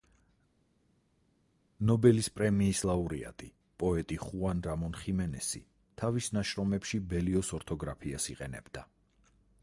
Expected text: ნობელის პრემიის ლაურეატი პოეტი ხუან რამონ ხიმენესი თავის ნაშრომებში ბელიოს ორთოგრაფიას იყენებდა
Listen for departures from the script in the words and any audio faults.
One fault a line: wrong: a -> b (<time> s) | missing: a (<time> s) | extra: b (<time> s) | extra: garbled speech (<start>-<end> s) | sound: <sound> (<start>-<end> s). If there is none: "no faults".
no faults